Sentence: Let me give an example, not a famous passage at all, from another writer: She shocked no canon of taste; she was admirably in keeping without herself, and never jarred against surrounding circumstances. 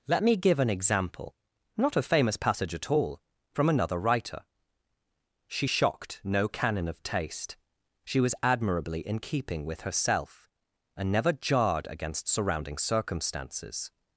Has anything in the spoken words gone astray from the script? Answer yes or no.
yes